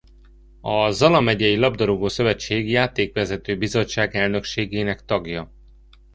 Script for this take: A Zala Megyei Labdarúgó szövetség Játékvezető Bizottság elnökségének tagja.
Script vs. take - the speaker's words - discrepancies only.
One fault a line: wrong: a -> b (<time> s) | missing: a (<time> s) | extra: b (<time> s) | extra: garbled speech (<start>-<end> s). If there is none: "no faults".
no faults